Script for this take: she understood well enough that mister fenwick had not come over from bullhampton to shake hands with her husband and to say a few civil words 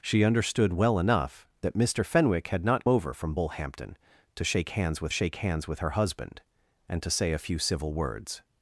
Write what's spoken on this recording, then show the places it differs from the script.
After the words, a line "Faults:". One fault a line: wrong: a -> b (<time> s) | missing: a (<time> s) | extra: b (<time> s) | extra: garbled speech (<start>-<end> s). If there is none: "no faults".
she understood well enough that mister fenwick had not over from bullhampton to shake hands with shake hands with her husband and to say a few civil words
Faults:
missing: come (2.9 s)
extra: shake hands with (5.1 s)